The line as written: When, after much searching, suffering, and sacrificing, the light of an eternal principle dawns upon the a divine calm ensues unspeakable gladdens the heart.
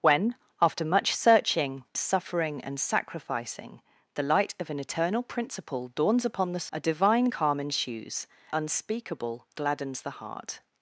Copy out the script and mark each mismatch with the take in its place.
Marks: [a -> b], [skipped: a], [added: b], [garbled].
When, after much searching, suffering, and sacrificing, the light of an eternal principle dawns upon the a divine calm ensues unspeakable gladdens the heart.